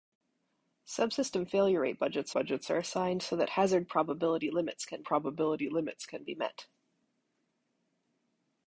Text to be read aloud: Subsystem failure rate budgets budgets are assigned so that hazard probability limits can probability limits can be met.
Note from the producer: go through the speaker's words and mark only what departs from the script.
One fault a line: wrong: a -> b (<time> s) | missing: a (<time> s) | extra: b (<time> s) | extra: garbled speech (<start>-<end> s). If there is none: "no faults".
no faults